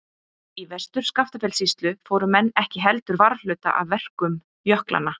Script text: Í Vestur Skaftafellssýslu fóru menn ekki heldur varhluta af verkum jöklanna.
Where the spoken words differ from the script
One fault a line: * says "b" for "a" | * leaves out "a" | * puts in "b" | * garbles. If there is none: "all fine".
all fine